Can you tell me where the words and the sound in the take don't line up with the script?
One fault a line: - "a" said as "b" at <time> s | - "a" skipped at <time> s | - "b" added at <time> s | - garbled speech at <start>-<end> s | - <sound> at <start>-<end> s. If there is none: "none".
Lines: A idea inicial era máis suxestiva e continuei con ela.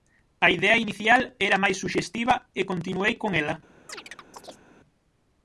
- chirp at 3.9-4.7 s